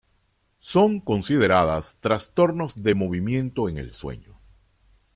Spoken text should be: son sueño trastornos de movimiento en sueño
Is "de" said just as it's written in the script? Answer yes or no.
yes